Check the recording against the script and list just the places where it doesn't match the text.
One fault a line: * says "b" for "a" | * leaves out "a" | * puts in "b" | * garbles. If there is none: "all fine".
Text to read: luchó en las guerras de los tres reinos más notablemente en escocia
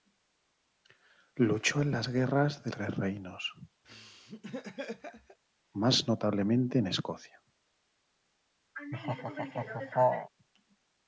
* leaves out "los"